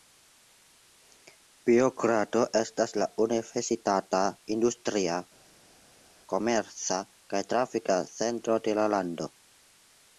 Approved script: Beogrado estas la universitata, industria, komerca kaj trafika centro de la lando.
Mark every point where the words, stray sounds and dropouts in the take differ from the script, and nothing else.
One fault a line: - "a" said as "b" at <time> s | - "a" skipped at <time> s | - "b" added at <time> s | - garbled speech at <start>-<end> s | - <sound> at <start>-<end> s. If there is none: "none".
none